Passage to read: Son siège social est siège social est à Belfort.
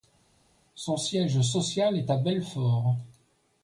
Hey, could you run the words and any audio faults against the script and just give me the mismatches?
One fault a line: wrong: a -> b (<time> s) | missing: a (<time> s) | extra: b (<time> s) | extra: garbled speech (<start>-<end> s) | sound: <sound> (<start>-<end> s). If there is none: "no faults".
missing: siège social est (2.1 s)